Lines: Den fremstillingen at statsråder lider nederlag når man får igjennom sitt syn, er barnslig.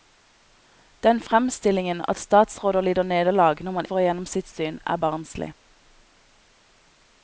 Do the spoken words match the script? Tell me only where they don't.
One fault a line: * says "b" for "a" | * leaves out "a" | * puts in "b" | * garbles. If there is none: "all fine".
all fine